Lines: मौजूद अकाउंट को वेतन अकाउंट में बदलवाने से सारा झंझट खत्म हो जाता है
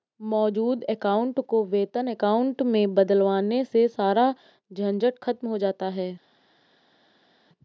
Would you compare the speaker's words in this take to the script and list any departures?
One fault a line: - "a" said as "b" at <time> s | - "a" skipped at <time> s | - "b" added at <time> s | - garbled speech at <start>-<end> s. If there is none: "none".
none